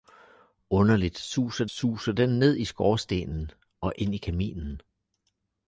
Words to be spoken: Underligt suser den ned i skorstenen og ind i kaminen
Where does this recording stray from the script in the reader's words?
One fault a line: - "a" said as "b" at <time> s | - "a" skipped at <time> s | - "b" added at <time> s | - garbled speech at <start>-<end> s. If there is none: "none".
- "suser" added at 1.6 s